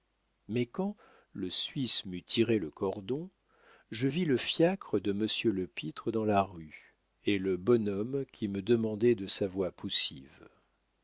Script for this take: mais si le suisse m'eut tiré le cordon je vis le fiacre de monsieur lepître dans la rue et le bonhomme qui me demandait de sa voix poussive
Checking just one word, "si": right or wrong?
wrong